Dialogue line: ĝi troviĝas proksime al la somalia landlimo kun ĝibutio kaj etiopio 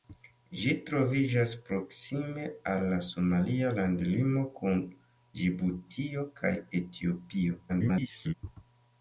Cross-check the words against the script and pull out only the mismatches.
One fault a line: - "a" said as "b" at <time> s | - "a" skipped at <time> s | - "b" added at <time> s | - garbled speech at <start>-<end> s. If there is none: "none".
- garbled speech at 7.7-8.3 s